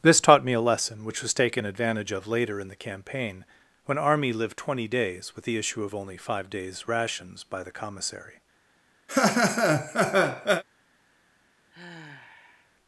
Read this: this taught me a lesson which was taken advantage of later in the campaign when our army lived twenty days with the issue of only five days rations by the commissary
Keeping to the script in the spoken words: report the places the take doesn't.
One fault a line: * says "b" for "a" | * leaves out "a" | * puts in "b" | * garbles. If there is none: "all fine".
* leaves out "our"